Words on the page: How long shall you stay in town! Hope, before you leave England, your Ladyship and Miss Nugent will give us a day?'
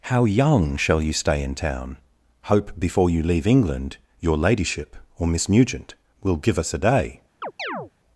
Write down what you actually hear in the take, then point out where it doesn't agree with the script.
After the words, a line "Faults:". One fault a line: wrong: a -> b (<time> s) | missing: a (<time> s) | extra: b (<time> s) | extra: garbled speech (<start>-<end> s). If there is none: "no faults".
How young shall you stay in town! Hope, before you leave England, your Ladyship or Miss Nugent will give us a day?'
Faults:
wrong: long -> young (0.2 s)
wrong: and -> or (5.2 s)